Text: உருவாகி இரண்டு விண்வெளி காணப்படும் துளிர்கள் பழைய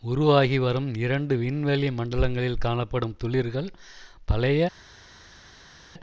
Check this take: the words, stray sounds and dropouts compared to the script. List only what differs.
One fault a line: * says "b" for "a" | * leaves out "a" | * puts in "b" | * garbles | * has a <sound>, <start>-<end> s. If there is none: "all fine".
* puts in "வரும்"
* puts in "மண்டலங்களில்"